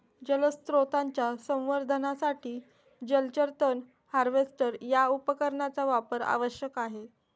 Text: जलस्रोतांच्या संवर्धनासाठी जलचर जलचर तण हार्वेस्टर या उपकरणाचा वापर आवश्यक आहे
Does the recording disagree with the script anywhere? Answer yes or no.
yes